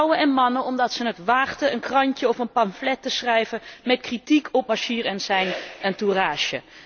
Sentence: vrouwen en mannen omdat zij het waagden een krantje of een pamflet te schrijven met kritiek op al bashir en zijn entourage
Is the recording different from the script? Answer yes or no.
yes